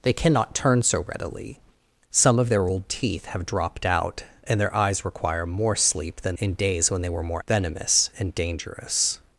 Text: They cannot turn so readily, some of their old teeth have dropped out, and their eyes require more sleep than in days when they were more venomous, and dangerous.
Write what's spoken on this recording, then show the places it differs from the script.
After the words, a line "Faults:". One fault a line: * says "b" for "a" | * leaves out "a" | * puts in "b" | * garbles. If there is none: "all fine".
They cannot turn so readily, some of their old teeth have dropped out, and their eyes require more sleep than in days when they were more venomous, and dangerous.
Faults:
all fine